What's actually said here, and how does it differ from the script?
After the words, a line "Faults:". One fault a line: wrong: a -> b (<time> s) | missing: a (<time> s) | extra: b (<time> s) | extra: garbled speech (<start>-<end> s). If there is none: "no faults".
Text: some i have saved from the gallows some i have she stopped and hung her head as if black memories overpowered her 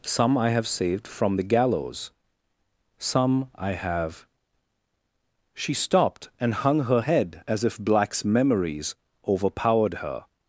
some i have saved from the gallows some i have she stopped and hung her head as if blacks memories overpowered her
Faults:
wrong: black -> blacks (7.8 s)